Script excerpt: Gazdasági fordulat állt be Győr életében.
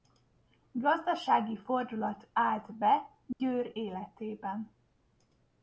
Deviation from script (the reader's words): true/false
false